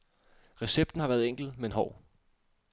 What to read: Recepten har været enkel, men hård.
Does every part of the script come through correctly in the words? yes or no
yes